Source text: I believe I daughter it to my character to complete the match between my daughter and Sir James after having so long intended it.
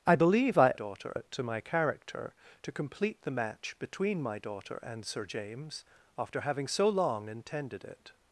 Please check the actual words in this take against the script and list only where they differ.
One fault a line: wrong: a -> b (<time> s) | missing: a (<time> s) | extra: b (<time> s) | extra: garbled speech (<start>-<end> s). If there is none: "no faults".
no faults